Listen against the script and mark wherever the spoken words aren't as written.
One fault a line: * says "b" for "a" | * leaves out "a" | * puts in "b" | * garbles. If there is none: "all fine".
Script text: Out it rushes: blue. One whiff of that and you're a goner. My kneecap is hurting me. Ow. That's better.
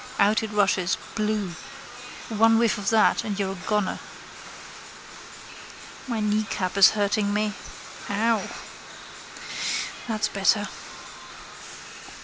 all fine